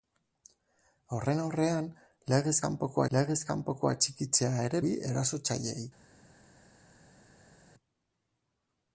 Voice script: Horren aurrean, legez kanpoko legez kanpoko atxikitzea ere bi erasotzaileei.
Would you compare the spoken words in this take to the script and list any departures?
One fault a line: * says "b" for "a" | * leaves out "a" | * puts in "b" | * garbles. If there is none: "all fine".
all fine